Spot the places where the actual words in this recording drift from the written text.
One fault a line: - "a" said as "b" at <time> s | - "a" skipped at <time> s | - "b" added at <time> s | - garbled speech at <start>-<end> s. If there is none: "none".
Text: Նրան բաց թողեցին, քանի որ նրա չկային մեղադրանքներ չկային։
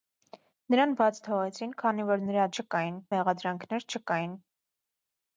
none